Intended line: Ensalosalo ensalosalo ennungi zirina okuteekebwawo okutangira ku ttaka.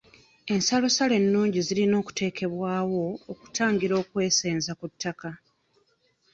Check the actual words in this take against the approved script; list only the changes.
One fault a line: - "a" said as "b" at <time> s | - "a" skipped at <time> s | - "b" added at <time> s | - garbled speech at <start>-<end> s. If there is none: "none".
- "ensalosalo" skipped at 1.1 s
- "okwesenza" added at 4.0 s